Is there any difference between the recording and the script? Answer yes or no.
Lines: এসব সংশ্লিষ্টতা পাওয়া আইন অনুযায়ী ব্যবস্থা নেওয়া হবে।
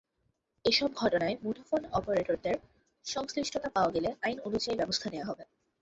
yes